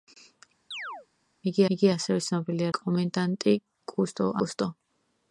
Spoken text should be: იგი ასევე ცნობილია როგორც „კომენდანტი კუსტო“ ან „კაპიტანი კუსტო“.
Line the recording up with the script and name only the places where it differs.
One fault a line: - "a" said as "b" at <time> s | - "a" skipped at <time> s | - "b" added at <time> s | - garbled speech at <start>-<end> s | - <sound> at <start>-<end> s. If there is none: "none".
- chirp at 0.7-1.1 s
- "იგი" added at 1.8 s
- "როგორც" skipped at 2.7 s
- "ან კაპიტანი" skipped at 4.3 s